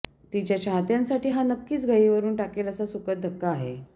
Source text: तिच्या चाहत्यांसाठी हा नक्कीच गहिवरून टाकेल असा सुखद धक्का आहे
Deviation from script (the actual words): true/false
false